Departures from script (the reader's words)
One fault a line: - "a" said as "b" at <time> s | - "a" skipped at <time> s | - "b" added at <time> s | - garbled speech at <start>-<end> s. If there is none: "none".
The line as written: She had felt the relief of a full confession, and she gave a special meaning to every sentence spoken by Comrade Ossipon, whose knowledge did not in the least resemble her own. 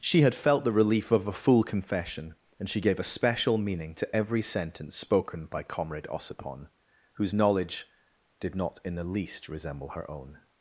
none